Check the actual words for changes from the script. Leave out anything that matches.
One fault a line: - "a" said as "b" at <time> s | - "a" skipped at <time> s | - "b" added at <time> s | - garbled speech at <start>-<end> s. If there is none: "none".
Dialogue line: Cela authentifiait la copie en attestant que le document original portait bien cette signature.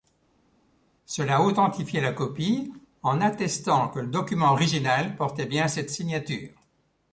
none